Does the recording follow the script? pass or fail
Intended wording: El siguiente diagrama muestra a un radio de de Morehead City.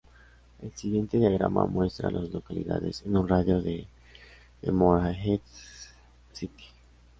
fail